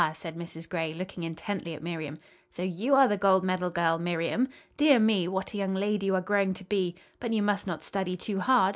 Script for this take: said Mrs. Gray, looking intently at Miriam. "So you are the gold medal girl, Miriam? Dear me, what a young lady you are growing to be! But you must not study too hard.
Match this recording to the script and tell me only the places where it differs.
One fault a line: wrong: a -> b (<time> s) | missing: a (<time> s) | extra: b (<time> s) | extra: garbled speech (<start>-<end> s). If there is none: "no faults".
no faults